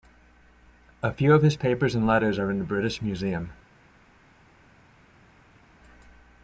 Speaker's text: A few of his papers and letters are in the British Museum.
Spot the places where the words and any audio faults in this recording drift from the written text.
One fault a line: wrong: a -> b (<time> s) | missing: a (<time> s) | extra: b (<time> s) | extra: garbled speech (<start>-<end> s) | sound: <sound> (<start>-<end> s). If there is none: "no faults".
no faults